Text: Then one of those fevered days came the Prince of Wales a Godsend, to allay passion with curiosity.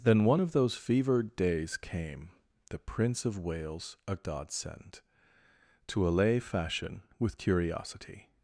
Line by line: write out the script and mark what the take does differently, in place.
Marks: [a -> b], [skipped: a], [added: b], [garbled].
Then one of those fevered days came the Prince of Wales a Godsend, to allay [passion -> fashion] with curiosity.